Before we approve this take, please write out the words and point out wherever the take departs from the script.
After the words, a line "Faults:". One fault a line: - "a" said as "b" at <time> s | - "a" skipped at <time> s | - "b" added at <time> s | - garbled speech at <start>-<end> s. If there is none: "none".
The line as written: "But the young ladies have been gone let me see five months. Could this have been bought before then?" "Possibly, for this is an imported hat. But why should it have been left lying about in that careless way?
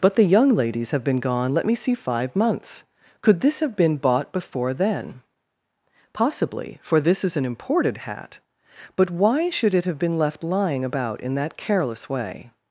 "But the young ladies have been gone let me see five months. Could this have been bought before then?" "Possibly, for this is an imported hat. But why should it have been left lying about in that careless way?
Faults:
none